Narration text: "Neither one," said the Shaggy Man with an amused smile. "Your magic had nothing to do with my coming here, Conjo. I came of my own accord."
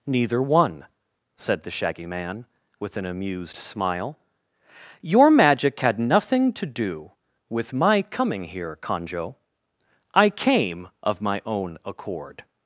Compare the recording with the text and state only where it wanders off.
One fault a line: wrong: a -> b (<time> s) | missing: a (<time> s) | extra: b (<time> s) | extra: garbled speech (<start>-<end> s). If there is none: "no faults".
no faults